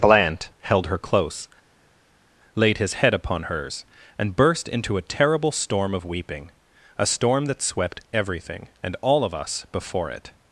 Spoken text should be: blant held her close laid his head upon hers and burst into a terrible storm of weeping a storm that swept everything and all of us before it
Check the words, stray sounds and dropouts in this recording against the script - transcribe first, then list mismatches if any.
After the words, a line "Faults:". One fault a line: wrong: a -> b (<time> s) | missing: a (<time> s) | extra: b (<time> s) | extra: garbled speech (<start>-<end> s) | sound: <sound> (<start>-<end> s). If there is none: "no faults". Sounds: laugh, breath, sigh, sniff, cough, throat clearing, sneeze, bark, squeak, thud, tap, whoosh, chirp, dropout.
blant held her close laid his head upon hers and burst into a terrible storm of weeping a storm that swept everything and all of us before it
Faults:
no faults